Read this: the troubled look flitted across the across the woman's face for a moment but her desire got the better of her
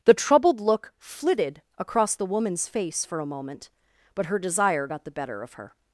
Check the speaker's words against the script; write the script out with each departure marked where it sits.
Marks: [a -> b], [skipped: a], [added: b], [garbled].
the troubled look flitted across the [skipped: across the] woman's face for a moment but her desire got the better of her